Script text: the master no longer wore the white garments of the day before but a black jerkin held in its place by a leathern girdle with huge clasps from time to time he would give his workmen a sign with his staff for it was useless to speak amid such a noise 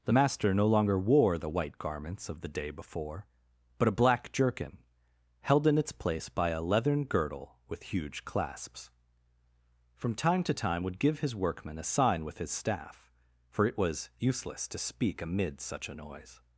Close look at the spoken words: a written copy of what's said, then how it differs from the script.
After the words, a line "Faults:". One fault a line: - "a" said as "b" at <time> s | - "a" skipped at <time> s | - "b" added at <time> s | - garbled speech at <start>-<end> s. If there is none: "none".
the master no longer wore the white garments of the day before but a black jerkin held in its place by a leathern girdle with huge clasps from time to time would give his workmen a sign with his staff for it was useless to speak amid such a noise
Faults:
- "he" skipped at 10.8 s